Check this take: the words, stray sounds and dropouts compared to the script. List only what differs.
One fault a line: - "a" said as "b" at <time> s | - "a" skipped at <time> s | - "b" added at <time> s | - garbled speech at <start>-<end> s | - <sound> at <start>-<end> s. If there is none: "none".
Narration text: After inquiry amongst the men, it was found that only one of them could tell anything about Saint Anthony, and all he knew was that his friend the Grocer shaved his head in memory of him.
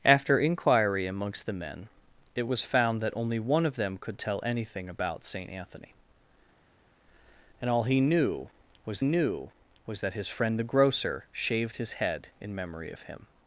- "knew was" added at 9.0 s